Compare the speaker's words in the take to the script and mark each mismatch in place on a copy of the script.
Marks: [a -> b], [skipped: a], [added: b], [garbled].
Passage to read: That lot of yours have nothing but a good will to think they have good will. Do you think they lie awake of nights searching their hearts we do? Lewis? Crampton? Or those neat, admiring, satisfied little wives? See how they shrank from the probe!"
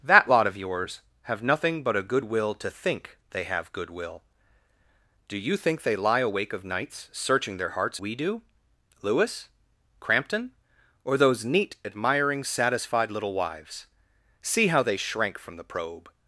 That lot of yours have nothing but a good will to think they have good will. Do you think they lie awake of nights searching their hearts we do? Lewis? Crampton? Or those neat, admiring, satisfied little wives? See how they shrank from the probe!"